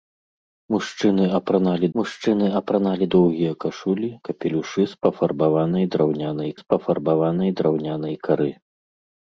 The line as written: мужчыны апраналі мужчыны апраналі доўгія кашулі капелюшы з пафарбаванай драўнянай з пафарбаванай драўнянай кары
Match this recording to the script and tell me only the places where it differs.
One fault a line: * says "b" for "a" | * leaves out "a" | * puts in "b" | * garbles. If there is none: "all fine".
all fine